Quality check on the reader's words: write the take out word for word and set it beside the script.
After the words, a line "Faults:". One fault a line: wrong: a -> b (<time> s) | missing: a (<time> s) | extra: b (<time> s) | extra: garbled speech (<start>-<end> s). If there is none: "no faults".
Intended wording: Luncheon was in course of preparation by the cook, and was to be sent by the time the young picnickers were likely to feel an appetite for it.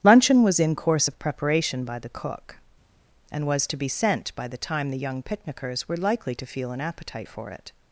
Luncheon was in course of preparation by the cook, and was to be sent by the time the young picnickers were likely to feel an appetite for it.
Faults:
no faults